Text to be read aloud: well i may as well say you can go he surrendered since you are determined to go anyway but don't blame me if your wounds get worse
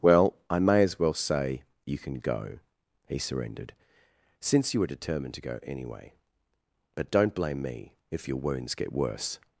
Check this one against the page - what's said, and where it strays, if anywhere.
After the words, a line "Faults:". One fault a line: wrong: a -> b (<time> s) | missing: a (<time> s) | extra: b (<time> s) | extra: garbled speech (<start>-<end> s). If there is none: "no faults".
well i may as well say you can go he surrendered since you were determined to go anyway but don't blame me if your wounds get worse
Faults:
wrong: are -> were (4.8 s)